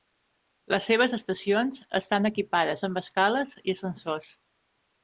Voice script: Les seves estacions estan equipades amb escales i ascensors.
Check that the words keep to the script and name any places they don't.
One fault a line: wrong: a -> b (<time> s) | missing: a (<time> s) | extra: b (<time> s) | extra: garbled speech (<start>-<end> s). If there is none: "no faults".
no faults